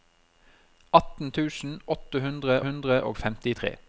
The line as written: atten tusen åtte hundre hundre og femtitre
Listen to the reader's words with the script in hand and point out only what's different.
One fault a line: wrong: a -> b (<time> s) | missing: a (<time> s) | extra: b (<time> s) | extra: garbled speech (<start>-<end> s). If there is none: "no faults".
no faults